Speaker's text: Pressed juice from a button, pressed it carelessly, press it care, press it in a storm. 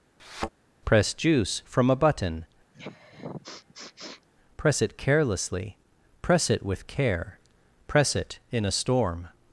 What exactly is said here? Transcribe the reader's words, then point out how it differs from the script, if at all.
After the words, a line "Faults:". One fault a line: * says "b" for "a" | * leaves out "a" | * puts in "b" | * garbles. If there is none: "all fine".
Press juice from a button, press it carelessly, press it with care, press it in a storm.
Faults:
* says "Press" for "Pressed"
* says "press" for "pressed"
* puts in "with"